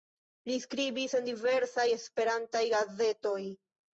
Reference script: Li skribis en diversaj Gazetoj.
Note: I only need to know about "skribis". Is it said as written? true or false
true